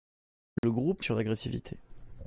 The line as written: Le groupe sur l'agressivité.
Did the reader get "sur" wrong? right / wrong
right